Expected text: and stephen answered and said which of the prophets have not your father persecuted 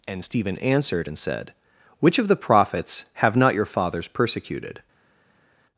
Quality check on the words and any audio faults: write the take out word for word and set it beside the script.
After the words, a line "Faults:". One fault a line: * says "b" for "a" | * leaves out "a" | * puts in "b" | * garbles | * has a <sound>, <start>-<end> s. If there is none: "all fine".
and stephen answered and said which of the prophets have not your fathers persecuted
Faults:
* says "fathers" for "father"